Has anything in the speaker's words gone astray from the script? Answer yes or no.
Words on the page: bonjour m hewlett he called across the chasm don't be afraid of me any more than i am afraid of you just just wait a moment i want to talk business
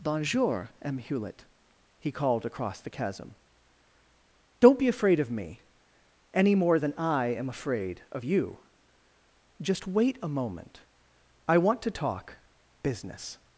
yes